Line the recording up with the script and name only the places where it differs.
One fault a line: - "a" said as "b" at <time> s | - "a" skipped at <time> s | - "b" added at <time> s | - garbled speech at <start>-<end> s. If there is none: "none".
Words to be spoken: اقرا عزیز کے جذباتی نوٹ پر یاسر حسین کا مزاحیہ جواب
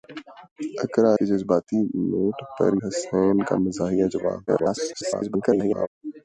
- "عزیز" skipped at 1.1 s
- "یاسر" skipped at 2.7 s
- garbled speech at 4.5-5.9 s